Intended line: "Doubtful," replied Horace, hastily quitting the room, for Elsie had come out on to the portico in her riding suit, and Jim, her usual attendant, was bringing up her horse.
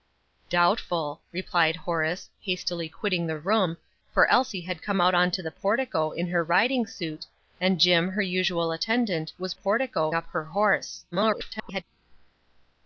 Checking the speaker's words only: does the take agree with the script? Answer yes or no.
no